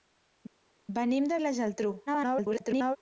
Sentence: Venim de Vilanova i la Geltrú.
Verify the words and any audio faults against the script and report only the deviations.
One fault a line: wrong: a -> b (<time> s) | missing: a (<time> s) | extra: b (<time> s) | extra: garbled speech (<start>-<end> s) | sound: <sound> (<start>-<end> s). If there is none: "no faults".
missing: Vilanova (1.4 s)
extra: garbled speech (2.1-3.0 s)